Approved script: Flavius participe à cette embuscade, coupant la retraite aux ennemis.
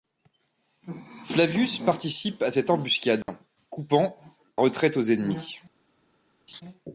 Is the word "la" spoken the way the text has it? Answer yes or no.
no